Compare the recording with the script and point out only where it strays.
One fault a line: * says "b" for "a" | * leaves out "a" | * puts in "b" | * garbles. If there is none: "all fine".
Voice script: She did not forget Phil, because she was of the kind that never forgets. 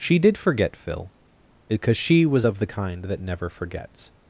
* leaves out "not"